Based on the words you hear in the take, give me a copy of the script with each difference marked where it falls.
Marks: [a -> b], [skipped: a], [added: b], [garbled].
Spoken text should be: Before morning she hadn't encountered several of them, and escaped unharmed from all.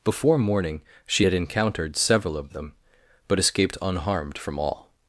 Before morning she [hadn't -> had] encountered several of them, [and -> but] escaped unharmed from all.